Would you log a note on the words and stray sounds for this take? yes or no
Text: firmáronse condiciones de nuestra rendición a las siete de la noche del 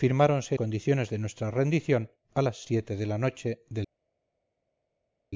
no